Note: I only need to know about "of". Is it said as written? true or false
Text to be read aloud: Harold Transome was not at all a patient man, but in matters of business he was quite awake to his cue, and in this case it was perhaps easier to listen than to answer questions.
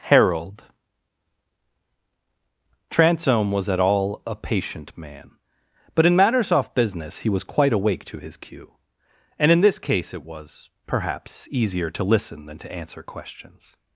false